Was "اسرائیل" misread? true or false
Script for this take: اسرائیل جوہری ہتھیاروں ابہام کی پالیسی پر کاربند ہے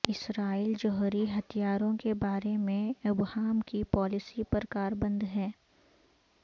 false